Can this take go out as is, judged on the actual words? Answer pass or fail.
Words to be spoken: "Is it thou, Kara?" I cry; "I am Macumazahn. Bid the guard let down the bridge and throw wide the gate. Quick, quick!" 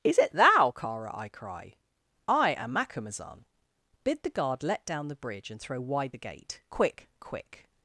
pass